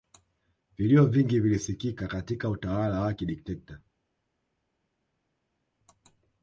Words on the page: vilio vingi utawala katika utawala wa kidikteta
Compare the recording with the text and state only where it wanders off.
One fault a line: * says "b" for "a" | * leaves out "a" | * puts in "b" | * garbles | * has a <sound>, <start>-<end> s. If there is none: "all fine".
* says "vilisikika" for "utawala"